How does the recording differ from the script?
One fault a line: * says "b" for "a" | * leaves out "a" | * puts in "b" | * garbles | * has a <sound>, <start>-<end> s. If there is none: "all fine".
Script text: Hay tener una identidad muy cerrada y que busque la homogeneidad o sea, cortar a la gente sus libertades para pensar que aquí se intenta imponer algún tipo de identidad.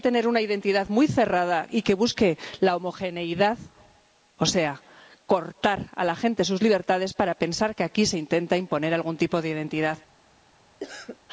* has a cough, 10.8-11.2 s